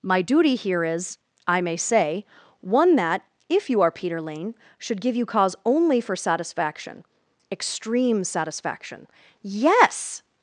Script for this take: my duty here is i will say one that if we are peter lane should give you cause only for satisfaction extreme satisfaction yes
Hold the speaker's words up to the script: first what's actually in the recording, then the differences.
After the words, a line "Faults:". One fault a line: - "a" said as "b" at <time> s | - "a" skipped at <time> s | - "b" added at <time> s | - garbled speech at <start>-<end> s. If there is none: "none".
my duty here is i may say one that if you are peter lane should give you cause only for satisfaction extreme satisfaction yes
Faults:
- "will" said as "may" at 1.6 s
- "we" said as "you" at 3.7 s